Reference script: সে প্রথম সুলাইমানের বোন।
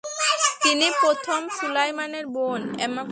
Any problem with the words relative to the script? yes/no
yes